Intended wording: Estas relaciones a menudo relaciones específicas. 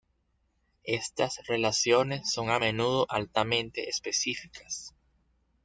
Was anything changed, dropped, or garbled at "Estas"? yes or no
no